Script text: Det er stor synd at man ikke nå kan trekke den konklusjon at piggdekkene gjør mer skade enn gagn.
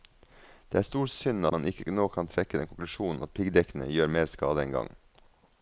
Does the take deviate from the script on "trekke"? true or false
false